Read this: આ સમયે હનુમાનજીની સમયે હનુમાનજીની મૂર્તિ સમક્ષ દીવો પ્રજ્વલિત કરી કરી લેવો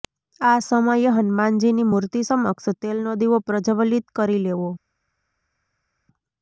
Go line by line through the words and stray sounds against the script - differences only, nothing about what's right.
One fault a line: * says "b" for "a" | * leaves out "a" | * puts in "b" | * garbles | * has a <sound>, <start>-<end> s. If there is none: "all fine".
* leaves out "સમયે હનુમાનજીની"
* puts in "તેલનો"
* leaves out "કરી"